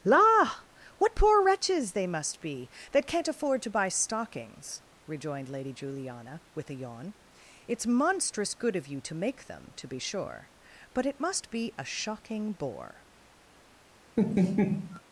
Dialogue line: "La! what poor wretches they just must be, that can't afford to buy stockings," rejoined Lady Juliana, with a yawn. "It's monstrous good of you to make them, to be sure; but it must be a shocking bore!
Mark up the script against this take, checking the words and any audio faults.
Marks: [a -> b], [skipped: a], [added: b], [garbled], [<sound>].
"La! what poor wretches they [skipped: just] must be, that can't afford to buy stockings," rejoined Lady Juliana, with a yawn. "It's monstrous good of you to make them, to be sure; but it must be a shocking bore! [laugh]